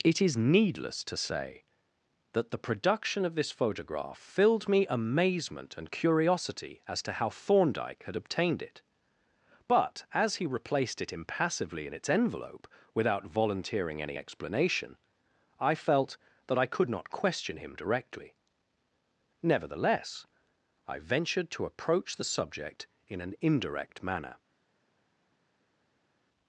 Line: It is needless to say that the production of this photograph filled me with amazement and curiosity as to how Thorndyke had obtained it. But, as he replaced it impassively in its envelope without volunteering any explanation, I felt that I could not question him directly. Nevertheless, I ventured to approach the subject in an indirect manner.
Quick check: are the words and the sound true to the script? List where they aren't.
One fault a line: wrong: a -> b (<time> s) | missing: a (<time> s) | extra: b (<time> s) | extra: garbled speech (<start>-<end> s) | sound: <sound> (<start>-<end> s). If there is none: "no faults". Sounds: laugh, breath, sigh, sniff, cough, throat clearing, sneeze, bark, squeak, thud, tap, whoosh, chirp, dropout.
missing: with (4.9 s)